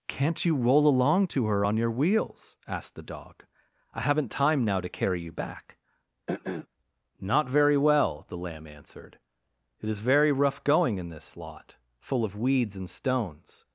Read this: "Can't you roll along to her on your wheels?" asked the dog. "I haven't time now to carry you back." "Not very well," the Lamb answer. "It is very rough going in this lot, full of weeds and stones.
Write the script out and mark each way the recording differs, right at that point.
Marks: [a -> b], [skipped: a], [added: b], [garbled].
"Can't you roll along to her on your wheels?" asked the dog. "I haven't time now to carry you back." "Not very well," the Lamb [answer. -> answered] "It is very rough going in this lot, full of weeds and stones.